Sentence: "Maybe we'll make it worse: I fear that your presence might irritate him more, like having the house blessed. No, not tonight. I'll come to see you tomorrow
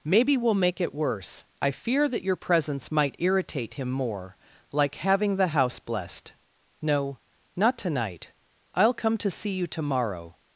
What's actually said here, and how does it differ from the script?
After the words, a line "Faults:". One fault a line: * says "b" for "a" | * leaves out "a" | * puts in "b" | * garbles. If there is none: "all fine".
"Maybe we'll make it worse: I fear that your presence might irritate him more, like having the house blessed. No, not tonight. I'll come to see you tomorrow
Faults:
all fine